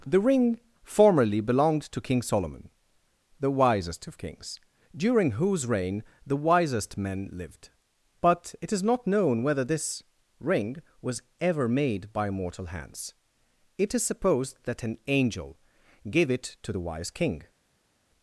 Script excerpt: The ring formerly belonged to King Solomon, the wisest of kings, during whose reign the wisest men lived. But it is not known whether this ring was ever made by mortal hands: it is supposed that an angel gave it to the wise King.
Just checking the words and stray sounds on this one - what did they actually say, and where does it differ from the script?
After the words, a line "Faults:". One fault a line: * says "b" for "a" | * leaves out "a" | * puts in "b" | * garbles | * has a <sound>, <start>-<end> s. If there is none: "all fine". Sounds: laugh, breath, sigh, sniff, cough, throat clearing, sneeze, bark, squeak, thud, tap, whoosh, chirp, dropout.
The ring formerly belonged to King Solomon, the wisest of kings, during whose reign the wisest men lived. But it is not known whether this ring was ever made by mortal hands: it is supposed that an angel gave it to the wise King.
Faults:
all fine